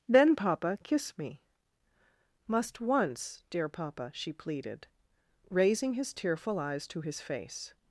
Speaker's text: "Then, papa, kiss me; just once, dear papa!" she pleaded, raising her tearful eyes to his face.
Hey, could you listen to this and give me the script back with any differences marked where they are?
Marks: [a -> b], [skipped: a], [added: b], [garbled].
"Then, papa, kiss me; [just -> must] once, dear papa!" she pleaded, raising [her -> his] tearful eyes to his face.